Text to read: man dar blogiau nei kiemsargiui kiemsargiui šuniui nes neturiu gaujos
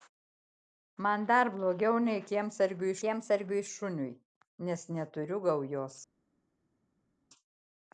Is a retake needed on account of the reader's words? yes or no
no